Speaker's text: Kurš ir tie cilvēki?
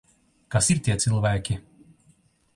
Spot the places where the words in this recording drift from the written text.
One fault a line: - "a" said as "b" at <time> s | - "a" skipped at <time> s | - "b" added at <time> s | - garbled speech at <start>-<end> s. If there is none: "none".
- "Kurš" said as "Kas" at 0.6 s